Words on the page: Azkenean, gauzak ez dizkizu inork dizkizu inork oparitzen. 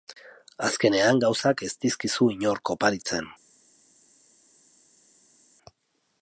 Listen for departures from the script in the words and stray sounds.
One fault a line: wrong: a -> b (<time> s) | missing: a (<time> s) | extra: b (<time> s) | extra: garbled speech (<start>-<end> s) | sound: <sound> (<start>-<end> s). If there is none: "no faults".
missing: dizkizu inork (2.7 s)